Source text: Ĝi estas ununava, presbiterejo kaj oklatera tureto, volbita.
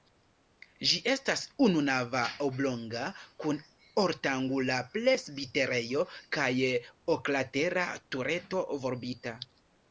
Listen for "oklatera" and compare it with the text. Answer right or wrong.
right